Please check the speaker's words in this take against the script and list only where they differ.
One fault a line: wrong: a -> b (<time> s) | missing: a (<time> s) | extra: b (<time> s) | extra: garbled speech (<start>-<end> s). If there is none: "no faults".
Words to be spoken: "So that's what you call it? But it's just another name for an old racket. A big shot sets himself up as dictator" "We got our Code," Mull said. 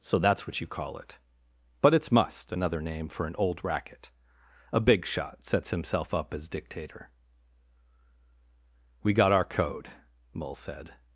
wrong: just -> must (2.1 s)